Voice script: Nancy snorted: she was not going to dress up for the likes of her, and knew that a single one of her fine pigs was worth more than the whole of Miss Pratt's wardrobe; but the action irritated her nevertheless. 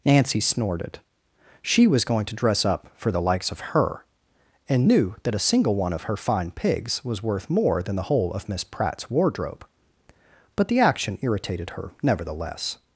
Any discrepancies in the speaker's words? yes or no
yes